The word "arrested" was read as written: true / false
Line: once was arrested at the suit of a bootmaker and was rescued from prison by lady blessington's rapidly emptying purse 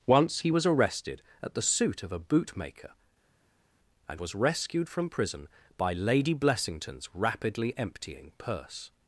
true